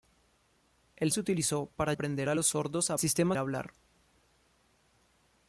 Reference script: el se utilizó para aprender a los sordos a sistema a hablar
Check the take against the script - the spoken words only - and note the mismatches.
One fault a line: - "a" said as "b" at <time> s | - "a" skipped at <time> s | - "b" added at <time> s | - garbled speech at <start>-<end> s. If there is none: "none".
none